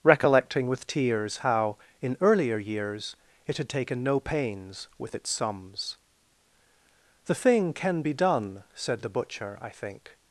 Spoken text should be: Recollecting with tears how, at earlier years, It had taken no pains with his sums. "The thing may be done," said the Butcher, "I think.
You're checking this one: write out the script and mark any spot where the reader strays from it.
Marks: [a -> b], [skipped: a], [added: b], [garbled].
Recollecting with tears how, [at -> in] earlier years, It had taken no pains with [his -> its] sums. "The thing [may -> can] be done," said the Butcher, "I think.